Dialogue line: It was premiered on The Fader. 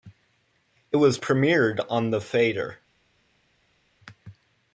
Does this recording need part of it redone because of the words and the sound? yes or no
no